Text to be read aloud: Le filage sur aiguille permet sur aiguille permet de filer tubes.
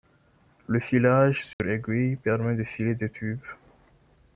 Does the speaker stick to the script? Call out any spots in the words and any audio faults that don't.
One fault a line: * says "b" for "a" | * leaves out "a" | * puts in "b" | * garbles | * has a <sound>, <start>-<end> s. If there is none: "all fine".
* has a dropout, 1.5-1.6 s
* leaves out "sur aiguille permet"
* puts in "des"